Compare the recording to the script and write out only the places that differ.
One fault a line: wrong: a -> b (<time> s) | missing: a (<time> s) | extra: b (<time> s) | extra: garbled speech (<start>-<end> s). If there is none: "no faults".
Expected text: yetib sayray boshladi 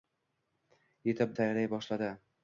no faults